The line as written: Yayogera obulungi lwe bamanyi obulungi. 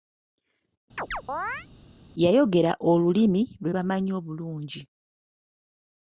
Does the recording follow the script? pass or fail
fail